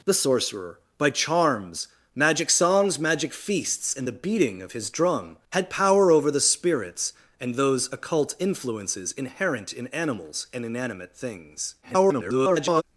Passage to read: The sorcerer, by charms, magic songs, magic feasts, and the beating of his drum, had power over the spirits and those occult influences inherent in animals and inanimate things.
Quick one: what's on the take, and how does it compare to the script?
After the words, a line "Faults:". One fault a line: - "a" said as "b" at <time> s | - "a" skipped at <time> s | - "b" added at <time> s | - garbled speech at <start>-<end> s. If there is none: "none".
The sorcerer, by charms, magic songs, magic feasts, and the beating of his drum, had power over the spirits and those occult influences inherent in animals and inanimate things. [garbled]
Faults:
- garbled speech at 11.8-12.8 s